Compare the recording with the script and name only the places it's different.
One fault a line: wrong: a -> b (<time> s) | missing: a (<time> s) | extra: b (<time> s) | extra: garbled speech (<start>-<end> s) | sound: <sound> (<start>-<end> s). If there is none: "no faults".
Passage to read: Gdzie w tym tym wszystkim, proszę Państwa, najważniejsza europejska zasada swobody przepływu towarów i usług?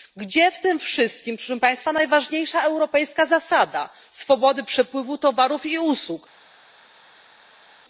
missing: tym (0.8 s)